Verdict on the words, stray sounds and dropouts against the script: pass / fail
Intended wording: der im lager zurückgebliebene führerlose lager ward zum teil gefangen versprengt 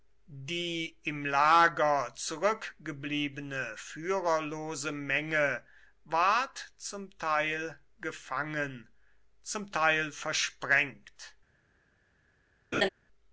fail